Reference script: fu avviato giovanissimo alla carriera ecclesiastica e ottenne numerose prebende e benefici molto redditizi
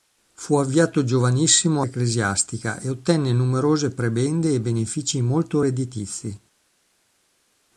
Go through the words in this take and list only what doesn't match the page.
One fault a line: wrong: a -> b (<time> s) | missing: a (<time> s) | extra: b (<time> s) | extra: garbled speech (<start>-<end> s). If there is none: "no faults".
missing: alla carriera (1.9 s)